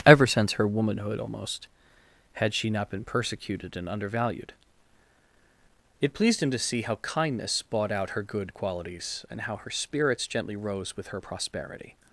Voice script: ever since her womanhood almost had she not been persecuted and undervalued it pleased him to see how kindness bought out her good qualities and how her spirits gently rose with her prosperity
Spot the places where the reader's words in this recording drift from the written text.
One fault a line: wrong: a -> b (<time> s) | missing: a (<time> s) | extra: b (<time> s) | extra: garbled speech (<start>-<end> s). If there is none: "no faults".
no faults